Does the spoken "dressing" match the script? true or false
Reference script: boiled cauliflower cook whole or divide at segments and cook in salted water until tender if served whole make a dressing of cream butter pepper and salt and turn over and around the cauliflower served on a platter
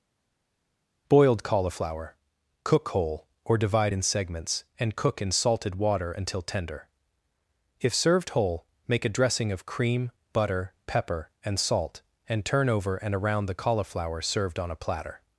true